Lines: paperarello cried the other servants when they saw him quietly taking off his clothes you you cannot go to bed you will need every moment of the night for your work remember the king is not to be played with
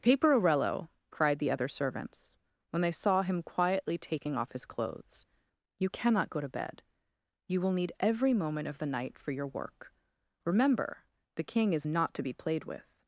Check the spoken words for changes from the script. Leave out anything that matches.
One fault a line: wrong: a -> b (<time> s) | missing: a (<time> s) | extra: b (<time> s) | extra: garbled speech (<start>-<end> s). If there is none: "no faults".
missing: you (5.9 s)